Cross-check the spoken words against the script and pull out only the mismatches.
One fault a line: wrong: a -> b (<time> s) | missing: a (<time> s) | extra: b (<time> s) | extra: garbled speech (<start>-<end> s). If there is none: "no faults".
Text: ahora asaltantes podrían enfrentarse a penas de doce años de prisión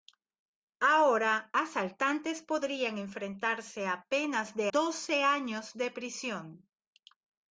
no faults